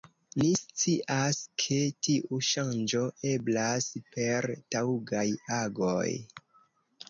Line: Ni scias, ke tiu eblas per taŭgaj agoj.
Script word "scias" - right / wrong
right